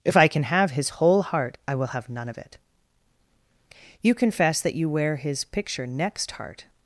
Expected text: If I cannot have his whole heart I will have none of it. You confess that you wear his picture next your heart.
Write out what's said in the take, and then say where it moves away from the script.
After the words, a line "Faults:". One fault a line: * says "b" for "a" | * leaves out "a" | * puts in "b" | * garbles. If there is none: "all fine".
If I can have his whole heart I will have none of it. You confess that you wear his picture next heart.
Faults:
* says "can" for "cannot"
* leaves out "your"